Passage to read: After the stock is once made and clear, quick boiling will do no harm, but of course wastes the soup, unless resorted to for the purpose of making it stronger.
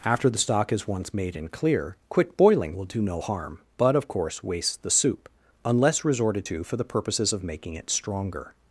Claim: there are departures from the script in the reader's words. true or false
true